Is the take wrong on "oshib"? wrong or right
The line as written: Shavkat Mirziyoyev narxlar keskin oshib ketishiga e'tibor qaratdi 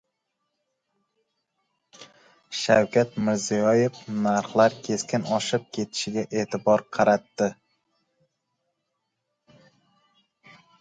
right